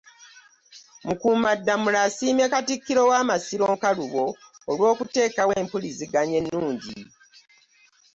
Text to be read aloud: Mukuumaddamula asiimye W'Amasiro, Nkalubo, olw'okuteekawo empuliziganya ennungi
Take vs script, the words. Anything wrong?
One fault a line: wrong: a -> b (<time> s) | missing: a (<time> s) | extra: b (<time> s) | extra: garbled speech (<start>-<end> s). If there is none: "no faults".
extra: Katikkiro (2.5 s)